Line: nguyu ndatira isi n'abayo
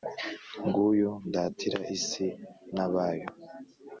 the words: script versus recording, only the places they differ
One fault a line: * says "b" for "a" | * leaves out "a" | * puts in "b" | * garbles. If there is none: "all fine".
all fine